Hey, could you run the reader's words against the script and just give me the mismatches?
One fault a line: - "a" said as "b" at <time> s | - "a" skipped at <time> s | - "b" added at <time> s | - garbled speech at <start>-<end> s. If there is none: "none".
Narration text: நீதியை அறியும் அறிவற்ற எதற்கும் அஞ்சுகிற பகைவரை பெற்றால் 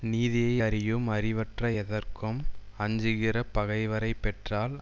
none